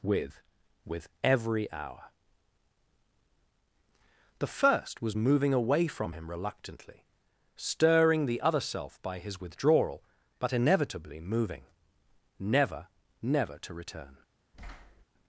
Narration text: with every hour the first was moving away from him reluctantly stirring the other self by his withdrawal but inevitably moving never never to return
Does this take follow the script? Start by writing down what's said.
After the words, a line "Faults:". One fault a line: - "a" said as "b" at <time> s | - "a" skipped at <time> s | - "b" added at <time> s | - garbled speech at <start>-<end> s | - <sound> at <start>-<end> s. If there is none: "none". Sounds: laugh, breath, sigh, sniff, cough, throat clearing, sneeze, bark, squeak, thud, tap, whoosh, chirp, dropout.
with with every hour the first was moving away from him reluctantly stirring the other self by his withdrawal but inevitably moving never never to return
Faults:
- "with" added at 0.8 s
- thud at 14.5-15.1 s